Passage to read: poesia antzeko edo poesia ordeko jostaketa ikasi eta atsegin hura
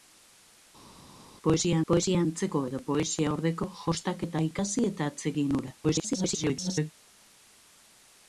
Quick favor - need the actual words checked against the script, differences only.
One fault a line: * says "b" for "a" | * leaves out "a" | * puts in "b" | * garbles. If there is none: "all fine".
* puts in "poesia"
* garbles